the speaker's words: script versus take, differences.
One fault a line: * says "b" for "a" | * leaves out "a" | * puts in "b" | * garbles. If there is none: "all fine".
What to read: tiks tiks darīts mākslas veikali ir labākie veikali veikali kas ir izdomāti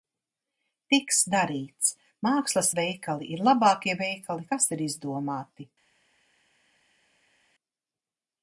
* leaves out "tiks"
* leaves out "veikali"